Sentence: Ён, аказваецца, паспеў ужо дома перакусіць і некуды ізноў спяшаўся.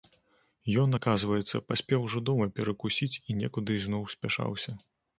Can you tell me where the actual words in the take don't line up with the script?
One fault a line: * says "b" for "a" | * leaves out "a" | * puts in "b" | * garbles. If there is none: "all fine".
all fine